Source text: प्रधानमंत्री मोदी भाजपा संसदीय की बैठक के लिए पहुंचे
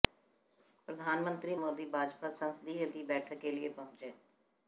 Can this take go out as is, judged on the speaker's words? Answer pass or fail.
pass